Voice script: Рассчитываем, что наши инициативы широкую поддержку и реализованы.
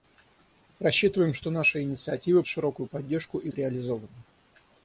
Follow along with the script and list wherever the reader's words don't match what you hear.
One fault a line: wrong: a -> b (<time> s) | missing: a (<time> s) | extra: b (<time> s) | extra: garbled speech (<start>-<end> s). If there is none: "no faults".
no faults